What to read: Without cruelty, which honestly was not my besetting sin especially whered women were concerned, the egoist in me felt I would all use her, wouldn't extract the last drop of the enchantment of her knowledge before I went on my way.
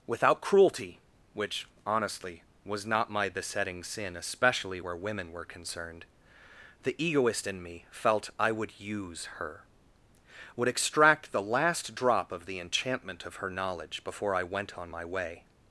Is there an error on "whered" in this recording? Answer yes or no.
yes